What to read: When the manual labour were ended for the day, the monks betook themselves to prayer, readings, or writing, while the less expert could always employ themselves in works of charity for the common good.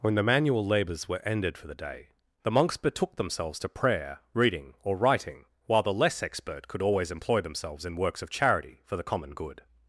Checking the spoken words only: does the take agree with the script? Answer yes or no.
no